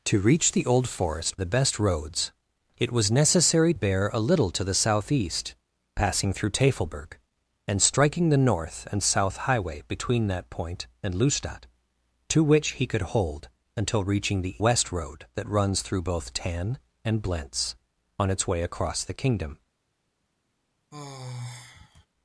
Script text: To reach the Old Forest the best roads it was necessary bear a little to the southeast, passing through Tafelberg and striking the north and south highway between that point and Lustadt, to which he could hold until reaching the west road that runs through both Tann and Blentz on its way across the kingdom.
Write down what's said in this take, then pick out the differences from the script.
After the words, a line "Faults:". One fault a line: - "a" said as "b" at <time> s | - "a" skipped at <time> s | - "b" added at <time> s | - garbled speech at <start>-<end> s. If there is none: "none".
To reach the Old Forest the best roads it was necessary bear a little to the southeast, passing through Tafelberg and striking the north and south highway between that point and Lustadt, to which he could hold until reaching the west road that runs through both Tann and Blentz on its way across the kingdom.
Faults:
none